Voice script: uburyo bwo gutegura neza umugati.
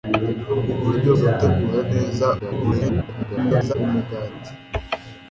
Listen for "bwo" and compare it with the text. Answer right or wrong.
wrong